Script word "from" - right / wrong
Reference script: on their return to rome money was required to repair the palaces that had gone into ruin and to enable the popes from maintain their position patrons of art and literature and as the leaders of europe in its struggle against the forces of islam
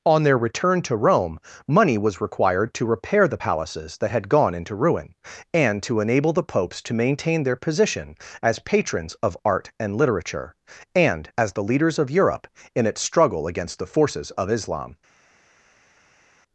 wrong